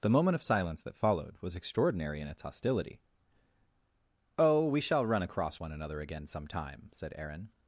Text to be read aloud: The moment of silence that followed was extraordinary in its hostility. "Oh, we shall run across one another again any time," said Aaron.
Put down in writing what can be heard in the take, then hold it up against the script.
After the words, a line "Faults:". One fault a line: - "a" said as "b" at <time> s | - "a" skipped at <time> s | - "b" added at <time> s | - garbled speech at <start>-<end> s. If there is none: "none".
The moment of silence that followed was extraordinary in its hostility. "Oh, we shall run across one another again some time," said Aaron.
Faults:
- "any" said as "some" at 6.2 s